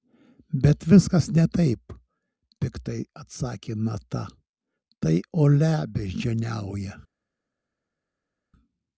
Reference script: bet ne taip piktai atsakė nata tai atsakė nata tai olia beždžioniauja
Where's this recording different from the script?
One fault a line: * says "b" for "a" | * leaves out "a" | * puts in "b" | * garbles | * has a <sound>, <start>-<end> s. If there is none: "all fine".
* puts in "viskas"
* leaves out "atsakė nata tai"